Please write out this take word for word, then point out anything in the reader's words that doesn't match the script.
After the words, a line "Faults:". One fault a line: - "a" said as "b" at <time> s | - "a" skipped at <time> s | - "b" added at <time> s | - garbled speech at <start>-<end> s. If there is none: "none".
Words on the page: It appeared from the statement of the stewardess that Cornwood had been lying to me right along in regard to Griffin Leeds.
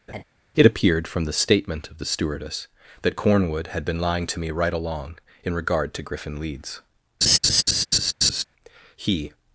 It appeared from the statement of the stewardess that Cornwood had been lying to me right along in regard to Griffin Leeds. He
Faults:
- "He" added at 8.9 s